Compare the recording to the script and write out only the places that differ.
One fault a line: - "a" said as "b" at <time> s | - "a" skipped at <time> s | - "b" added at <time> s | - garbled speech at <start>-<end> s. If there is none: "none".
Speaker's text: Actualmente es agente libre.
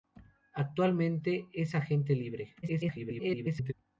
- garbled speech at 2.6-3.7 s